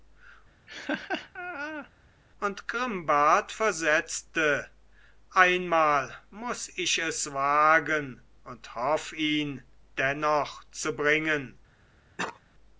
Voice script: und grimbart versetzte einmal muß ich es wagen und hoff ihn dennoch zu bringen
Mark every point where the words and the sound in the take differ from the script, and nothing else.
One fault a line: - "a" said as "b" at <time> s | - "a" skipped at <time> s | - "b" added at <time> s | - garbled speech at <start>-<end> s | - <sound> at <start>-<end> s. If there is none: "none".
- laugh at 0.7-1.9 s
- cough at 12.2-12.4 s